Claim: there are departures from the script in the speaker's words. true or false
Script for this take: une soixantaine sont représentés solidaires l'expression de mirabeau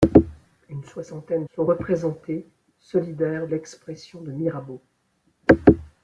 false